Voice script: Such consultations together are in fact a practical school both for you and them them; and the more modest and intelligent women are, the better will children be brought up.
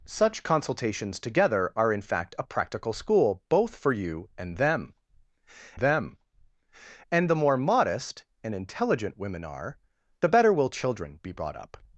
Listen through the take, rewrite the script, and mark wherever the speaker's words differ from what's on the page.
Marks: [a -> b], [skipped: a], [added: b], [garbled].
Such consultations together are in fact a practical school both for you and them them; and the more modest and intelligent women are, the better will children be brought up.